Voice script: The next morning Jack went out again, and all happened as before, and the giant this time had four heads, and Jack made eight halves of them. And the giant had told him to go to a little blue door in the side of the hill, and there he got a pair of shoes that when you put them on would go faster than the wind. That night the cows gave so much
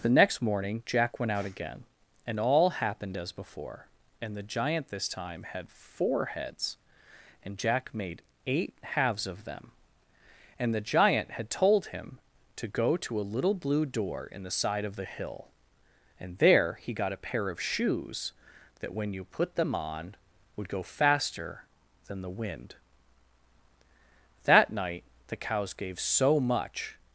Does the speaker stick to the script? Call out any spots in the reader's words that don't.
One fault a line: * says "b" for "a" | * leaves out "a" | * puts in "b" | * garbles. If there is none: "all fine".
all fine